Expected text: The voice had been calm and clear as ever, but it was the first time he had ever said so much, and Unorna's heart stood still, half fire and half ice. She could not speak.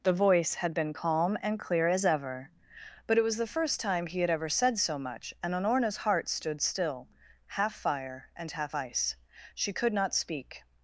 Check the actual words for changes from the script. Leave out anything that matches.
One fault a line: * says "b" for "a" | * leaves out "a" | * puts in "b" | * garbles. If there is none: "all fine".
all fine